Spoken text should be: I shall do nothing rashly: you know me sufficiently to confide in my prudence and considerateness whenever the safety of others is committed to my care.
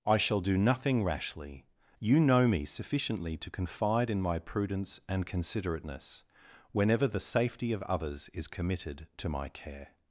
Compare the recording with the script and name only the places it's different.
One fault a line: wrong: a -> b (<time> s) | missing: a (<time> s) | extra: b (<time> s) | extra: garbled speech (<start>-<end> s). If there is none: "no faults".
no faults